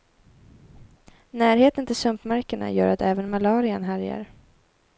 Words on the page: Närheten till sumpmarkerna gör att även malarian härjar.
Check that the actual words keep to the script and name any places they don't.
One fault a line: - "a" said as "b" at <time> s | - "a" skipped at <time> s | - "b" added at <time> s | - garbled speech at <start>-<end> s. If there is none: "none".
none